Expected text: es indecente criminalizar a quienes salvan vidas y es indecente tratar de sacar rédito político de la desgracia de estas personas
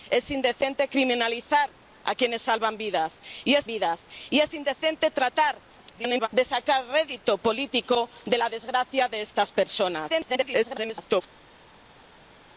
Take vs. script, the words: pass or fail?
fail